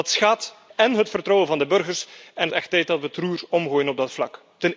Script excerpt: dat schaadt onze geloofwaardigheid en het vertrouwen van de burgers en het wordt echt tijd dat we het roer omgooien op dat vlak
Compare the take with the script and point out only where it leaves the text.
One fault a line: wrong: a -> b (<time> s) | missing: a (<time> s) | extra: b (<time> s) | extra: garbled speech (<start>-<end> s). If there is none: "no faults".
missing: onze geloofwaardigheid (0.6 s)
missing: het wordt (2.5 s)